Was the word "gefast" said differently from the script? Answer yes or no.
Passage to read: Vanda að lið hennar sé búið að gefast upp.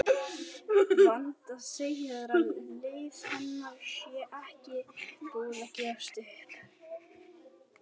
no